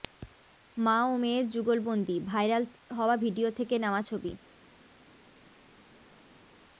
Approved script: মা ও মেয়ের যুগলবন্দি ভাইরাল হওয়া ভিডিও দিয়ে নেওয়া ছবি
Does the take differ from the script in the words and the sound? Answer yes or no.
yes